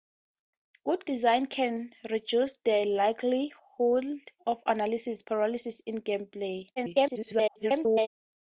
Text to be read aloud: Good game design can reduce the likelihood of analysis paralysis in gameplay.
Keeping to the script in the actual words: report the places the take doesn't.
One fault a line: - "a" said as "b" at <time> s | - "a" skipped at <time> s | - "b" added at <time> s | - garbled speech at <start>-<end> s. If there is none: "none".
- "game" skipped at 1.1 s
- garbled speech at 6.8-8.1 s